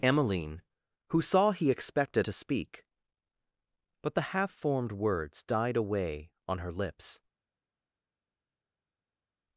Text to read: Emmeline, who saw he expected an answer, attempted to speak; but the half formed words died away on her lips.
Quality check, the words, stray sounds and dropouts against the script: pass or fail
fail